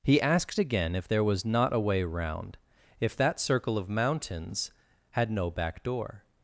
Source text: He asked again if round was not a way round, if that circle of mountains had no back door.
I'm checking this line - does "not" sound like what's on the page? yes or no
yes